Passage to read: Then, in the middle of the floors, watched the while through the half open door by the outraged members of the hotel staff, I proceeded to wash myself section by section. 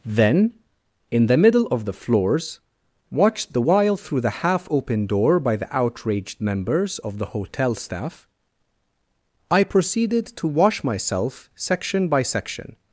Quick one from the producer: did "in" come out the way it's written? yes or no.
yes